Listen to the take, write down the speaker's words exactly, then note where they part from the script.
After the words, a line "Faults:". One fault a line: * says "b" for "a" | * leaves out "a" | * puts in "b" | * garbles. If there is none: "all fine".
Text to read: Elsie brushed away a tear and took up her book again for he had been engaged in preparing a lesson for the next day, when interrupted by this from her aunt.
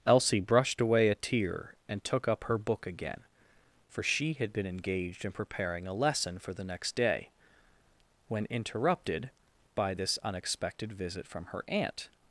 Elsie brushed away a tear and took up her book again for she had been engaged in preparing a lesson for the next day, when interrupted by this unexpected visit from her aunt.
Faults:
* says "she" for "he"
* puts in "unexpected visit"